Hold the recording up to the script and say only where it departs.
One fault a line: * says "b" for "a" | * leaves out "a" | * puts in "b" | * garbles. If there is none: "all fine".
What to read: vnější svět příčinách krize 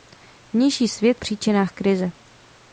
all fine